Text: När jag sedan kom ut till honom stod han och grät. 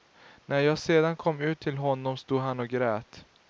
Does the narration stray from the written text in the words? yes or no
no